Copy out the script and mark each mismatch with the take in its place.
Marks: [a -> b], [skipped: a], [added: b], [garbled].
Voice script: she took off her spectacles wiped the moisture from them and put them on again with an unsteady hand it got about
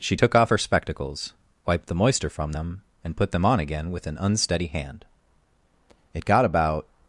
she took off her spectacles wiped the moisture from them and put them on again with an unsteady hand it got about